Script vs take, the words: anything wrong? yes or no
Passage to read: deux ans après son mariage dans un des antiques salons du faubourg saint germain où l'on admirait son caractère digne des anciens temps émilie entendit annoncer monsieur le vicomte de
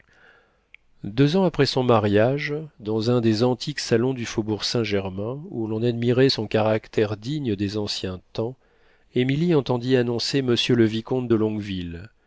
no